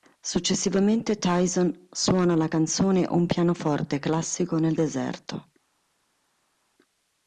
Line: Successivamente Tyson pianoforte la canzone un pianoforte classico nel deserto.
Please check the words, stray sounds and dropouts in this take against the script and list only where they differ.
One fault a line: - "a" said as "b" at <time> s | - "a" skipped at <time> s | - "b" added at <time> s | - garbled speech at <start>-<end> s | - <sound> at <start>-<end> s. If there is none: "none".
- "pianoforte" said as "suona" at 1.9 s